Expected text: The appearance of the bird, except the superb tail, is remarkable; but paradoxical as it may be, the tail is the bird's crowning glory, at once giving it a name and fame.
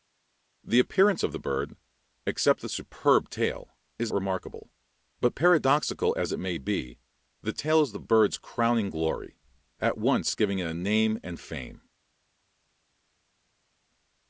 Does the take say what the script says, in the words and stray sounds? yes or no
yes